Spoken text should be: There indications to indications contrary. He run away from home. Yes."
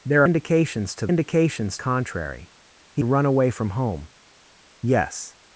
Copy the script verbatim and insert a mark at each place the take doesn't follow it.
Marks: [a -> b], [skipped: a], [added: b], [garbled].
There indications to indications contrary. He run away from home. Yes."